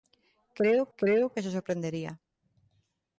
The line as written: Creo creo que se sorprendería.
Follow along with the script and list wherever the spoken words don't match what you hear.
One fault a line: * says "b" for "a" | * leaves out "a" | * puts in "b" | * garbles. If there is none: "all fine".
all fine